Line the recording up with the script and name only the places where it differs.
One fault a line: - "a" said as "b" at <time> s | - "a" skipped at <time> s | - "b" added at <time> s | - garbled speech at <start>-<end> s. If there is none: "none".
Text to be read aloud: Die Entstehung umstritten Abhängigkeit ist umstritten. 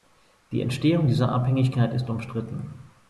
- "umstritten" said as "dieser" at 1.1 s